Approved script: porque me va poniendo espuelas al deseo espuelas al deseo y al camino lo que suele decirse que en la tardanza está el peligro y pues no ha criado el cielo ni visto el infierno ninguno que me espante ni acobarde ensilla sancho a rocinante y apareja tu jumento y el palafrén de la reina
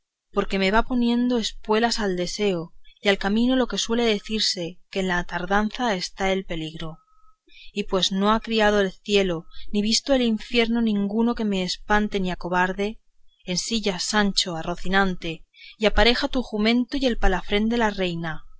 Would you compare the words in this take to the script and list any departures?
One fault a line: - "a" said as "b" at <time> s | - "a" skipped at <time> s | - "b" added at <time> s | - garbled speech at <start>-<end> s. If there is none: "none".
- "espuelas al deseo" skipped at 2.7 s